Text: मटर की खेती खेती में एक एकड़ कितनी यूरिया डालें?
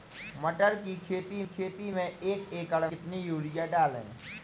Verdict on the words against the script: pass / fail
pass